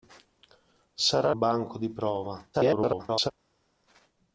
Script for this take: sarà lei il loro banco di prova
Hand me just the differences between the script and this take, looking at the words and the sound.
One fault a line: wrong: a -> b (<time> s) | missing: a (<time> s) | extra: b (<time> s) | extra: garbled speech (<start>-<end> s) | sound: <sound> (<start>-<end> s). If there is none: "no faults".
missing: lei il loro (1.3 s)
extra: garbled speech (2.5-3.3 s)